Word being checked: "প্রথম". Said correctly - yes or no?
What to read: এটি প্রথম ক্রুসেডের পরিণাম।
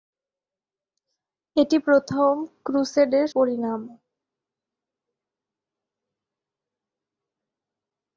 yes